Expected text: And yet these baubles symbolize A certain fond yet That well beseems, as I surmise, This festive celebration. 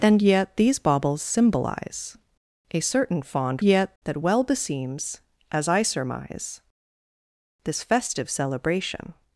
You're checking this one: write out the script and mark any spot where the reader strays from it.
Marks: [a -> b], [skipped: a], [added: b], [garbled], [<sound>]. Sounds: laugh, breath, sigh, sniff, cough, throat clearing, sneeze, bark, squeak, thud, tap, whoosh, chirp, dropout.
And yet these baubles symbolize A certain fond yet That well beseems, as I surmise, This festive celebration.